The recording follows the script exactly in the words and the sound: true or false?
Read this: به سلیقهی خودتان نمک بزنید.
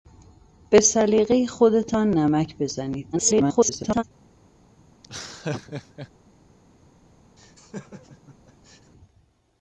false